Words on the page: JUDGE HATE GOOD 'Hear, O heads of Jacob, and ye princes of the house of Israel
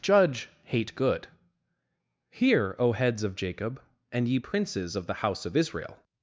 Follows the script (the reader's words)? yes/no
yes